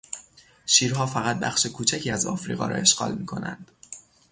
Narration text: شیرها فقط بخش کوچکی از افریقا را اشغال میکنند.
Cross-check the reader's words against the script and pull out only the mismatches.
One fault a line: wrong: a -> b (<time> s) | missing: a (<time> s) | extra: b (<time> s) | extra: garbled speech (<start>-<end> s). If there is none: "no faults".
no faults